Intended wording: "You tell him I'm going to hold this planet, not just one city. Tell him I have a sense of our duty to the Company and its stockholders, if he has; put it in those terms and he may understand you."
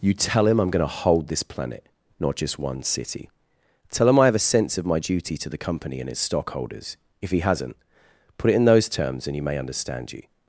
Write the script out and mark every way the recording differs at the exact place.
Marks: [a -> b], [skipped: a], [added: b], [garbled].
"You tell him I'm going to hold this planet, not just one city. Tell him I have a sense of [our -> my] duty to the Company and its stockholders, if he [has; -> hasn't] put it in those terms and he may understand you."